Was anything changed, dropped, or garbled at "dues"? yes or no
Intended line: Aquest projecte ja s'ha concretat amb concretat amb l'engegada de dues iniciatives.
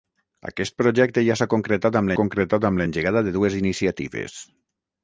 no